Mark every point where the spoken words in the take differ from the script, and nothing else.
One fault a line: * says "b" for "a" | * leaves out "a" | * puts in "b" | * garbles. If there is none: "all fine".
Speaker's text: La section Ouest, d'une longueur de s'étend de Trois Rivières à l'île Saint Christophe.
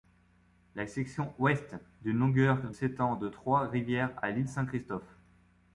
* leaves out "de"